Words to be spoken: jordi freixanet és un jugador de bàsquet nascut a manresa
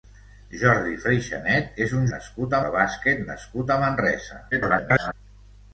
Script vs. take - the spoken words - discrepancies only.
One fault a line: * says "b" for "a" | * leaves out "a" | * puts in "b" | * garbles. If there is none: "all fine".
* says "nascut" for "jugador"
* garbles